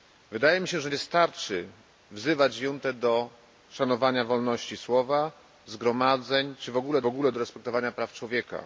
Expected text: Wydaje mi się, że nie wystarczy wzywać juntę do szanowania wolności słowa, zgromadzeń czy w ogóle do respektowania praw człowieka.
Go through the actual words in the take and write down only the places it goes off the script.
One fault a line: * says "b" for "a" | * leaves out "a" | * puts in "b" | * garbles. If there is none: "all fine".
* leaves out "nie"
* puts in "ogóle"